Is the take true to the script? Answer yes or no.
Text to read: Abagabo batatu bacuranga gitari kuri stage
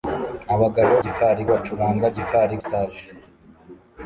no